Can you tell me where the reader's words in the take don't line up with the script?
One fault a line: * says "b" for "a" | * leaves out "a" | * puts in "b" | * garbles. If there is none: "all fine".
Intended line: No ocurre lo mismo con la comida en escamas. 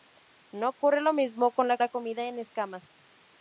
* puts in "la"